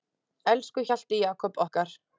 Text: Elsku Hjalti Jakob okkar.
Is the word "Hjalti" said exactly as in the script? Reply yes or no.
yes